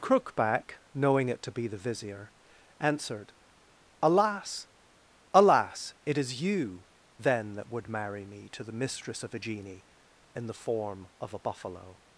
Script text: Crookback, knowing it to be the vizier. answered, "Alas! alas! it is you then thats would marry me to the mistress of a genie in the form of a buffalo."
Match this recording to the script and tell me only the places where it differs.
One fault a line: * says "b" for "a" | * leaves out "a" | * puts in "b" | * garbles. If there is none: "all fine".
* says "that" for "thats"